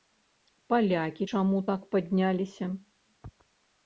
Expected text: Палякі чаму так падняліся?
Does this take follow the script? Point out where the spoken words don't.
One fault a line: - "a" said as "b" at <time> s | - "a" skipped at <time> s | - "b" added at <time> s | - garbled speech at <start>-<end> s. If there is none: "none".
none